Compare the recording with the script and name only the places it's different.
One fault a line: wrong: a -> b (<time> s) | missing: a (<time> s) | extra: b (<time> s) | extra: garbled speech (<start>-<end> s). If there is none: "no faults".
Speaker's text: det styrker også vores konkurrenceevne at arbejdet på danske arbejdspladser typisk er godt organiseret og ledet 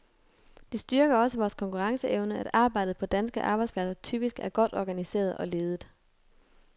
no faults